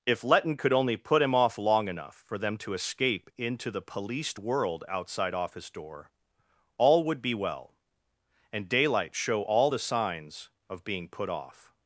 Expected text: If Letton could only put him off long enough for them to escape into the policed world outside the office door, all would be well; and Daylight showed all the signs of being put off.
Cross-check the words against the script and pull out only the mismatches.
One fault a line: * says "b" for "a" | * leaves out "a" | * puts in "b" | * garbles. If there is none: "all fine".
* leaves out "the"
* says "show" for "showed"